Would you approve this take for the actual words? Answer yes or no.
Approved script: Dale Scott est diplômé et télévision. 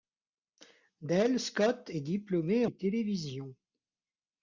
yes